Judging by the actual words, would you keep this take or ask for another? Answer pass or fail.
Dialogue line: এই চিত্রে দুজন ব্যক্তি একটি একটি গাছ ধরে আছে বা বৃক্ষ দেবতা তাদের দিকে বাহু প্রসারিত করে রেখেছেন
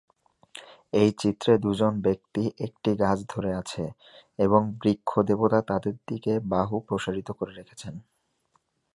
fail